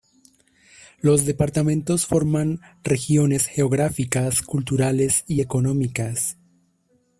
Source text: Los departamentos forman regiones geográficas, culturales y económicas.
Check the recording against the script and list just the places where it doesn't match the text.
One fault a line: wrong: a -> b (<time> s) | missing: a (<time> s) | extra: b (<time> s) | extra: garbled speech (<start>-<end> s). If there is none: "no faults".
no faults